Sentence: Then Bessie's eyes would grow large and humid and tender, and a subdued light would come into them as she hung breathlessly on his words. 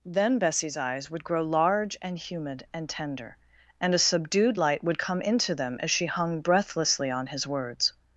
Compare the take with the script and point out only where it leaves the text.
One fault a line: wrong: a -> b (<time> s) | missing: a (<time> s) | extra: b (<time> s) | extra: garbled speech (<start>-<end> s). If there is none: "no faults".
no faults